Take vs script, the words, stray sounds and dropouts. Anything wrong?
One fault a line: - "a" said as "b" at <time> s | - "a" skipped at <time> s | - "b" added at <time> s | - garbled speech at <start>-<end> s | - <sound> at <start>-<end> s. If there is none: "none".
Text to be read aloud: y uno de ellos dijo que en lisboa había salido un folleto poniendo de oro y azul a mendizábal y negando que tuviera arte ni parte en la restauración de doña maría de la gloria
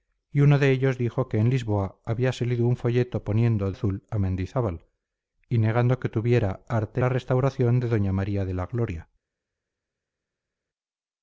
- "de oro y" skipped at 3.7 s
- "ni parte en" skipped at 7.0 s